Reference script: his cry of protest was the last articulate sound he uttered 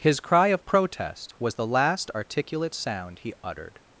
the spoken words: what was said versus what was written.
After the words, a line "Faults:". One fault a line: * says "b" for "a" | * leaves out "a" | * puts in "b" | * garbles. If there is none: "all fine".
his cry of protest was the last articulate sound he uttered
Faults:
all fine